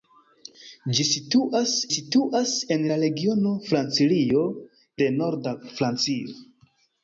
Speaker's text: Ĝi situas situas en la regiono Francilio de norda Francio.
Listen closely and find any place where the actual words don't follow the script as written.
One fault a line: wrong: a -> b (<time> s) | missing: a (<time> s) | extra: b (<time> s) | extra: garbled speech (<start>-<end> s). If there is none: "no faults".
no faults